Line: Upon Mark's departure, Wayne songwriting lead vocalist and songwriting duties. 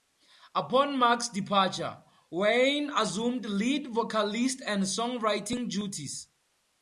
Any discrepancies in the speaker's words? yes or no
yes